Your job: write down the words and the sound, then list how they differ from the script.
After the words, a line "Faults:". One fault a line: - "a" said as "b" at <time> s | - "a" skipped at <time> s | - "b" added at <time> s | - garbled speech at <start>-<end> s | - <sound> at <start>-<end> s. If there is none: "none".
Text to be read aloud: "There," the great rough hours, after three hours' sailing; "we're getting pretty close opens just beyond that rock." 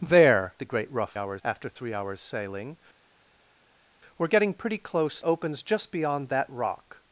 "There," the great rough hours, after three hours' sailing; "we're getting pretty close opens just beyond that rock."
Faults:
none